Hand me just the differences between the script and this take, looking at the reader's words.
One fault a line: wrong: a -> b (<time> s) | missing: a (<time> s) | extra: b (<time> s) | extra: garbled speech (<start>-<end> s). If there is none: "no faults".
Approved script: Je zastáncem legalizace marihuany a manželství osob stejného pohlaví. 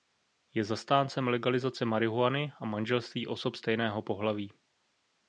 no faults